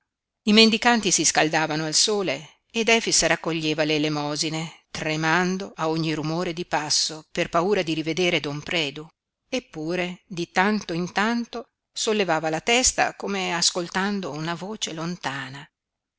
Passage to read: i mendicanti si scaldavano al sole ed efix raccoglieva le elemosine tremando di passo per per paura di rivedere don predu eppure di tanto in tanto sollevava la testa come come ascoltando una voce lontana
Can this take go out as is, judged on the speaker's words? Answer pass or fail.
fail